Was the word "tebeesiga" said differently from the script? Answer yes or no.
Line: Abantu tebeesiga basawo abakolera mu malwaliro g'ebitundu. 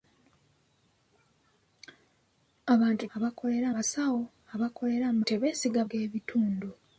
yes